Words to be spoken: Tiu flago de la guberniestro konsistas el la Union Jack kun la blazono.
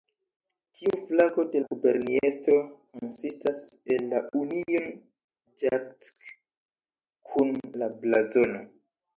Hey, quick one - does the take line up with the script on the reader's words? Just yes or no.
no